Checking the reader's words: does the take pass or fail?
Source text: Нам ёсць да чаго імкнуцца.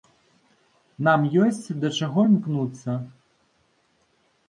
pass